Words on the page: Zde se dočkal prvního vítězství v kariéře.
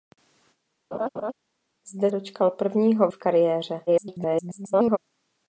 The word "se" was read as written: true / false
false